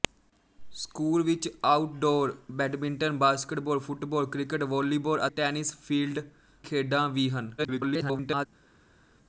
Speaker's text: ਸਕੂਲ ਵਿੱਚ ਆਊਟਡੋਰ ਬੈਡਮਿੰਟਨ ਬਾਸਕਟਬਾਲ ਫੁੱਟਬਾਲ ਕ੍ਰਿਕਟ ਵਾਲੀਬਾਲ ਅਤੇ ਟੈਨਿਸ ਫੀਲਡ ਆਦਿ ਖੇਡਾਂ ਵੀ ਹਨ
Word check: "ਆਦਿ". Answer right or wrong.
wrong